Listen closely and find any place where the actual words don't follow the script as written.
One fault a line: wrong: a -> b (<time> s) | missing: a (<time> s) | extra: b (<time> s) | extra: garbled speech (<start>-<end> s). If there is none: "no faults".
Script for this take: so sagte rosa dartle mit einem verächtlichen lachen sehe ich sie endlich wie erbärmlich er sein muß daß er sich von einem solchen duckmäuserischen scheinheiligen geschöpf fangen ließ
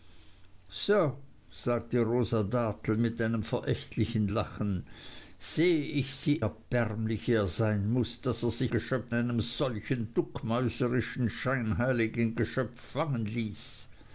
missing: endlich wie (6.5 s)
wrong: von -> geschöpf (8.7 s)